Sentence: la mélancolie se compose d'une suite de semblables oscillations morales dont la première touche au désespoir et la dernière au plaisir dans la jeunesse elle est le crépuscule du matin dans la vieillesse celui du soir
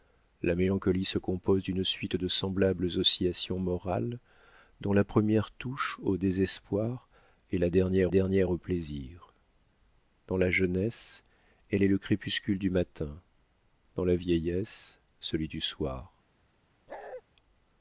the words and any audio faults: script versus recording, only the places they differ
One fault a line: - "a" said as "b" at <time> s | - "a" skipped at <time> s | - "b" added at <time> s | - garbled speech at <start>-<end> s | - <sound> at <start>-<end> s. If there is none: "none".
- "dernière" added at 8.1 s
- bark at 16.9-17.2 s